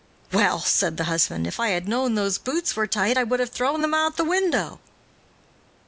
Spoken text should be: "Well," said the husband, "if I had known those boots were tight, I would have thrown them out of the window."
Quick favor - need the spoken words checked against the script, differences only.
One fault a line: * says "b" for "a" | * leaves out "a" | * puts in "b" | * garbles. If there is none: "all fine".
all fine